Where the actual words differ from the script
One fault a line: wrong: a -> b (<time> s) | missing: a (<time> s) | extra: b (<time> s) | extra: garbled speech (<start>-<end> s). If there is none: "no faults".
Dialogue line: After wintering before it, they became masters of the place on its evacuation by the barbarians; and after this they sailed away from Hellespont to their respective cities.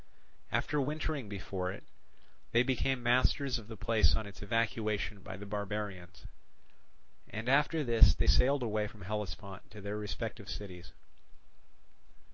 no faults